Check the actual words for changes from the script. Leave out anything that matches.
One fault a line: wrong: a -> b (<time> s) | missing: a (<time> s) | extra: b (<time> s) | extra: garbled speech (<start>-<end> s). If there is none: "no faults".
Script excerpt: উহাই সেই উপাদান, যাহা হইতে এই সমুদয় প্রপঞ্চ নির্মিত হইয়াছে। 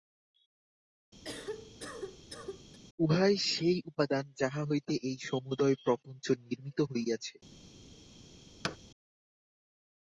no faults